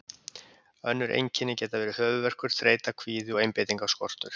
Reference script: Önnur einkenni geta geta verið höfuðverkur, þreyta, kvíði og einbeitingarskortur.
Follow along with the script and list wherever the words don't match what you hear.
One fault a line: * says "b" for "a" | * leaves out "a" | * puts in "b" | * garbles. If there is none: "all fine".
* leaves out "geta"